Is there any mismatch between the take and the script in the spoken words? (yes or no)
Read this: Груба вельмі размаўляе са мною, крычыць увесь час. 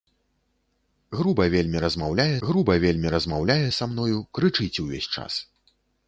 yes